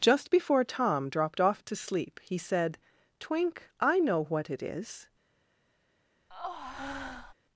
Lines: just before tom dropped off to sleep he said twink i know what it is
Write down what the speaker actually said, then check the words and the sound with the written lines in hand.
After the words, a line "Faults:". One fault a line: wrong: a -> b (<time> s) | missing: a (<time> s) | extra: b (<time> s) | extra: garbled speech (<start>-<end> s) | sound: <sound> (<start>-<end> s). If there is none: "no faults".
just before tom dropped off to sleep he said twink i know what it is
Faults:
sound: breath (6.3-7.3 s)